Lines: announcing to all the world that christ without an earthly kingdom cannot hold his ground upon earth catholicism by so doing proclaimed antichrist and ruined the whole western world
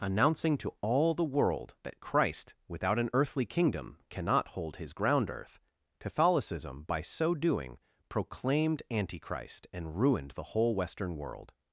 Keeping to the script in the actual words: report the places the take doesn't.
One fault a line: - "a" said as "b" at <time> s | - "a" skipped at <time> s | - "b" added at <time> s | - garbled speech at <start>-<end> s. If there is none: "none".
- "upon" skipped at 5.3 s